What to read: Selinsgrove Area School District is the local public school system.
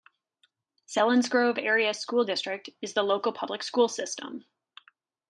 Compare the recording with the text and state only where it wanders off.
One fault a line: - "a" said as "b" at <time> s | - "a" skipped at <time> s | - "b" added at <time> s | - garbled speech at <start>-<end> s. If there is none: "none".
none